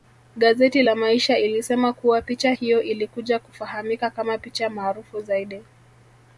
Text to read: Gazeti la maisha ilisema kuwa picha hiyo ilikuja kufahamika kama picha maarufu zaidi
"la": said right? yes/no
yes